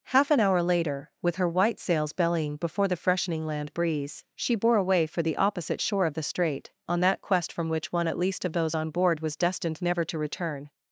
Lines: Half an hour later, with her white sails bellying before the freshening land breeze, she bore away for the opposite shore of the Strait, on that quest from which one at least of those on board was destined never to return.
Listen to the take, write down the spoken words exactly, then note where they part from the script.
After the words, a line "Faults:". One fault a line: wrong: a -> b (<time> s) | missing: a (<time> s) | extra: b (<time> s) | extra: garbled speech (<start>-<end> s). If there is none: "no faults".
Half an hour later, with her white sails bellying before the freshening land breeze, she bore away for the opposite shore of the Strait, on that quest from which one at least of those on board was destined never to return.
Faults:
no faults